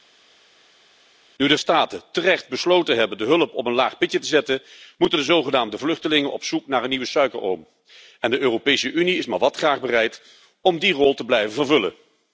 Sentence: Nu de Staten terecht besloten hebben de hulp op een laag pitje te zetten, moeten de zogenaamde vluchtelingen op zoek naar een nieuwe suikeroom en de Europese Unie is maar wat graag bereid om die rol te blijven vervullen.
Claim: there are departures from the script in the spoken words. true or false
false